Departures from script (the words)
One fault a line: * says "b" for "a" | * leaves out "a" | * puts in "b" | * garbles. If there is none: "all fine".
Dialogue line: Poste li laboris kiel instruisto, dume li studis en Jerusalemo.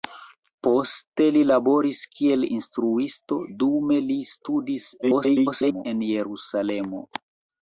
* garbles